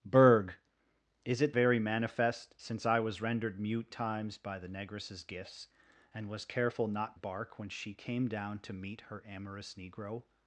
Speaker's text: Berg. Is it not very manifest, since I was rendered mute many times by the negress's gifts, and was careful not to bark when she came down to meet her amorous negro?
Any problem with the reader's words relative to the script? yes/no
yes